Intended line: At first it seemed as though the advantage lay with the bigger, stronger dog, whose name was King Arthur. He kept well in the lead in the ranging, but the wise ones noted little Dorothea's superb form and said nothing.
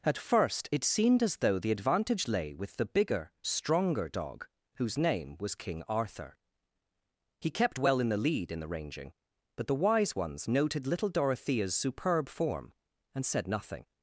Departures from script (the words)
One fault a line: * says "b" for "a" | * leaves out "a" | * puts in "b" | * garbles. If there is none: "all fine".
all fine